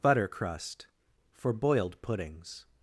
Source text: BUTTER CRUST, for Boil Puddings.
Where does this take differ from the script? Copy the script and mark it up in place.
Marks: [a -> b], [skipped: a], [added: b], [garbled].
BUTTER CRUST, for [Boil -> Boiled] Puddings.